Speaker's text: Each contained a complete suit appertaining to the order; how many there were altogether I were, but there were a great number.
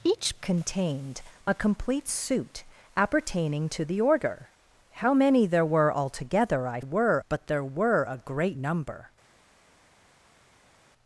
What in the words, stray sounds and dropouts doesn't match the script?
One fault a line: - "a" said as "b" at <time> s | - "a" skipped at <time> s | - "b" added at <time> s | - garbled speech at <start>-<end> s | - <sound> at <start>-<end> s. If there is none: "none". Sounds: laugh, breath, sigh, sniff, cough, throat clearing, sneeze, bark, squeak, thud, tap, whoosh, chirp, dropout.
none